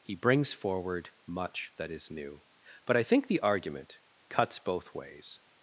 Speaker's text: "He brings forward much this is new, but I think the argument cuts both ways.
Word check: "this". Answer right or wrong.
wrong